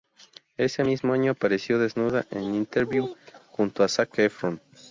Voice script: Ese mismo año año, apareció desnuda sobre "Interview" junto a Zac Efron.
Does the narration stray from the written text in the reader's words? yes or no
yes